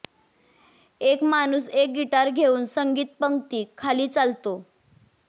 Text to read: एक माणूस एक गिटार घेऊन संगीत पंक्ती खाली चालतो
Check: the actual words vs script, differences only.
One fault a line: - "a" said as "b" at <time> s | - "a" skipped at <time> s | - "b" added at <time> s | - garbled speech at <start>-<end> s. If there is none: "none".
none